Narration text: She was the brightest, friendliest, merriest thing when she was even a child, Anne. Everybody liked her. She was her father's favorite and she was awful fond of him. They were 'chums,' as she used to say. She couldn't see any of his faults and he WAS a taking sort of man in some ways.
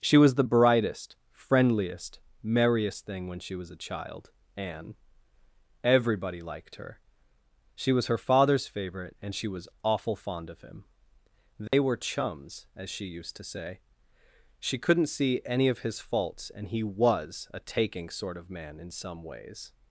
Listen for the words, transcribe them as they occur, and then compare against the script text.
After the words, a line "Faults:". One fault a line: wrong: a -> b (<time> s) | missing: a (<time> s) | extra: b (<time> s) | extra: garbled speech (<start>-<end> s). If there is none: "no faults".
She was the brightest, friendliest, merriest thing when she was a child, Anne. Everybody liked her. She was her father's favorite and she was awful fond of him. They were 'chums,' as she used to say. She couldn't see any of his faults and he WAS a taking sort of man in some ways.
Faults:
missing: even (3.7 s)